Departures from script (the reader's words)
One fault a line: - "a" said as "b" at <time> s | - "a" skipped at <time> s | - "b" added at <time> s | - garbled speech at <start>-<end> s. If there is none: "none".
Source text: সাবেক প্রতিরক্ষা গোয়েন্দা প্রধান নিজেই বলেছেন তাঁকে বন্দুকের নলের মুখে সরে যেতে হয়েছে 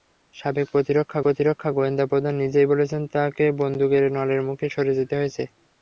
- "প্রতিরক্ষা" added at 1.2 s